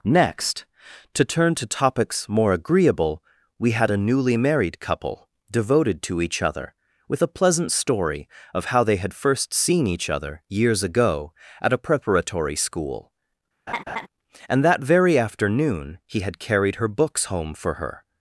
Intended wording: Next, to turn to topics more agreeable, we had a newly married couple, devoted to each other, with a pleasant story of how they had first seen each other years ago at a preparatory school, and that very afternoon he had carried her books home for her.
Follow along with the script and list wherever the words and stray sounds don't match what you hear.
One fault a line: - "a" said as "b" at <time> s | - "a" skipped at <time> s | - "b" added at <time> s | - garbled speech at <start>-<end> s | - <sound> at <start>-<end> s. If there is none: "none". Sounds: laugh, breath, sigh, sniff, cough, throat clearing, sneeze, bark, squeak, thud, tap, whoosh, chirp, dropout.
- laugh at 13.7-14.1 s